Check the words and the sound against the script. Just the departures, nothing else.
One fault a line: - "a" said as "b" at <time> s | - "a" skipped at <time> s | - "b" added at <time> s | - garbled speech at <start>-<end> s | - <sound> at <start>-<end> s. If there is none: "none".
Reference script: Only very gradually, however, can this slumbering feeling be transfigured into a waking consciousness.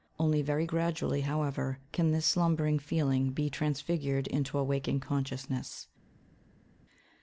none